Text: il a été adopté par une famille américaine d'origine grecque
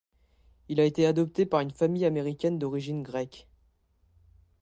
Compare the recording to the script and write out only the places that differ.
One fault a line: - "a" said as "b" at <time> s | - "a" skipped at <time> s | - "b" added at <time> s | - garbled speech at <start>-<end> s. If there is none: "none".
none